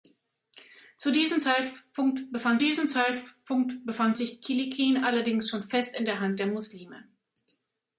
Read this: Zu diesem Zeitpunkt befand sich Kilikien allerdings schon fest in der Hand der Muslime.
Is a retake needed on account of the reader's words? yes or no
yes